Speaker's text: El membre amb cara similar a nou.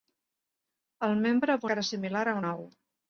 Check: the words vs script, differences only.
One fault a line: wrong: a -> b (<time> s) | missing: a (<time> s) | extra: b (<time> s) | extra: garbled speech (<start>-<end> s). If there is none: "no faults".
no faults